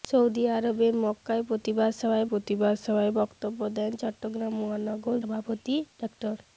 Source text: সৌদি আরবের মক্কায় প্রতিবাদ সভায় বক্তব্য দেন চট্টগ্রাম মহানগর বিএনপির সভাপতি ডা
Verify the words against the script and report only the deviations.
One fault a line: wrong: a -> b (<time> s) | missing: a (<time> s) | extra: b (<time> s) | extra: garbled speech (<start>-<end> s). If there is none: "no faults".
extra: প্রতিবাদ সভায় (2.2 s)
missing: বিএনপির (5.2 s)